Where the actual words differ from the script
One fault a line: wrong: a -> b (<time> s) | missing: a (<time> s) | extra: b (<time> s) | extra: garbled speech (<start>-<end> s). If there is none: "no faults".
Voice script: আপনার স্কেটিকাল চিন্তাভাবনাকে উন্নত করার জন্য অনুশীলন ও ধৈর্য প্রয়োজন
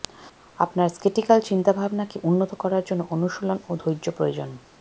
no faults